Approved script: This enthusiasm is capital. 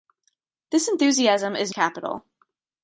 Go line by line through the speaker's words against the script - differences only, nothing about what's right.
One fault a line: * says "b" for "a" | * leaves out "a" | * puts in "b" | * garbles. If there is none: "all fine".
all fine